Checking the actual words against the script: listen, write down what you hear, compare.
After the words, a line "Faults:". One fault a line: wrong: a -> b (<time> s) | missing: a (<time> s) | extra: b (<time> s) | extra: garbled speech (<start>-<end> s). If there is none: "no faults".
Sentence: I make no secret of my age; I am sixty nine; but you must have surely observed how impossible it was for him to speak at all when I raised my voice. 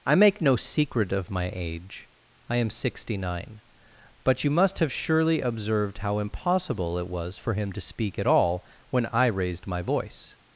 I make no secret of my age; I am sixty nine; but you must have surely observed how impossible it was for him to speak at all when I raised my voice.
Faults:
no faults